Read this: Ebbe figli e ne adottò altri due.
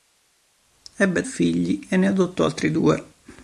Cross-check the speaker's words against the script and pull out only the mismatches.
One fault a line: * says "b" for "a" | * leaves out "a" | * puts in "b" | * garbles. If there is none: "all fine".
all fine